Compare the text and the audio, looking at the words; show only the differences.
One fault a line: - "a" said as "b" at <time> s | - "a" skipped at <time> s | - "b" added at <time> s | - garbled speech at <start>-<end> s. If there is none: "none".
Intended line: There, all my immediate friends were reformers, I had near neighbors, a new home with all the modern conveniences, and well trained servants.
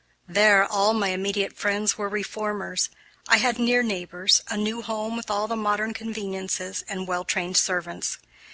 none